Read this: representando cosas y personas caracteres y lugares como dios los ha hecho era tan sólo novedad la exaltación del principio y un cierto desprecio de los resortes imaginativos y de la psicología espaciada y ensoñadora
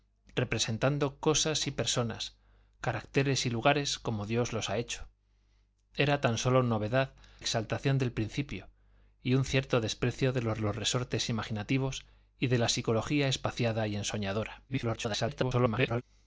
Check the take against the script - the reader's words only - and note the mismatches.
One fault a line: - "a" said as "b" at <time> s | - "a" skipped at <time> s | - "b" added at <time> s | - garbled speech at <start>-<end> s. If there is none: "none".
- "la" skipped at 7.1 s
- "los" added at 10.6 s
- garbled speech at 14.7-16.0 s